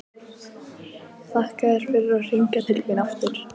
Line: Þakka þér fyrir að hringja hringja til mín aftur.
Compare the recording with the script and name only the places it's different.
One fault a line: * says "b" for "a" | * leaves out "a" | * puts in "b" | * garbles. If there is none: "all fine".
* leaves out "hringja"